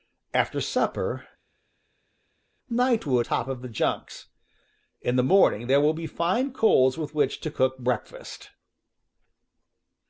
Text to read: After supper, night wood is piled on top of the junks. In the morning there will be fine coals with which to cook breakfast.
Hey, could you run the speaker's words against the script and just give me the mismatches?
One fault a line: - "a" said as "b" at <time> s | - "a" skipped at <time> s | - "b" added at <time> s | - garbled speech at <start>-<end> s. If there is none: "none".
- "is piled on" skipped at 3.2 s